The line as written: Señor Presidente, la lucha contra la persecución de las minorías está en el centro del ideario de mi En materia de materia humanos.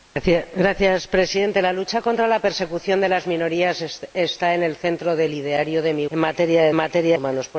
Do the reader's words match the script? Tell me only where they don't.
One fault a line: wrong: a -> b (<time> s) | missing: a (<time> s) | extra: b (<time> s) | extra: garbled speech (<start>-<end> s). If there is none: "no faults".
no faults